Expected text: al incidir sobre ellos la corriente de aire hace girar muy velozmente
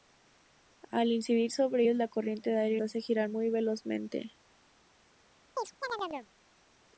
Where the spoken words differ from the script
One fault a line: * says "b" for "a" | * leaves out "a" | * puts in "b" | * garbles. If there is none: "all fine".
all fine